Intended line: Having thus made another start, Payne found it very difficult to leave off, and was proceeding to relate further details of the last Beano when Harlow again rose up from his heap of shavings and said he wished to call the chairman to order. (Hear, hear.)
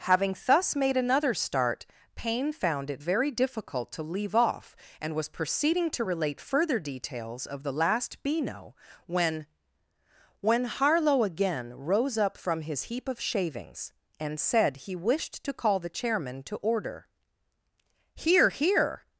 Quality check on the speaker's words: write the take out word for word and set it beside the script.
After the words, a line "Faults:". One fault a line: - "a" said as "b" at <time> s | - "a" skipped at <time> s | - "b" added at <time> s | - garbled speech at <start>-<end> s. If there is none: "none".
Having thus made another start, Payne found it very difficult to leave off, and was proceeding to relate further details of the last Beano when when Harlow again rose up from his heap of shavings and said he wished to call the chairman to order. (Hear, hear.)
Faults:
- "when" added at 10.4 s